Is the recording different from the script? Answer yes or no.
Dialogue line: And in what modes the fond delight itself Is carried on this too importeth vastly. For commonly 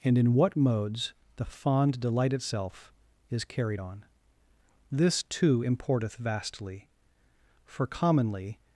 no